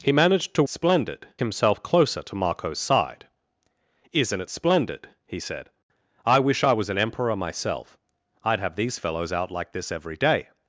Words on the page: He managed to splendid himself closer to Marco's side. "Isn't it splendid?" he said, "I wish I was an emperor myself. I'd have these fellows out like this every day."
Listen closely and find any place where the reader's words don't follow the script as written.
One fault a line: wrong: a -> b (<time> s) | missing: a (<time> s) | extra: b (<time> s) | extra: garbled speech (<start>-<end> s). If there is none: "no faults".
no faults